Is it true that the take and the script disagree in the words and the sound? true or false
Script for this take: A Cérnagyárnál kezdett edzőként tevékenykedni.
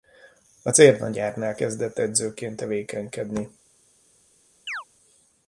true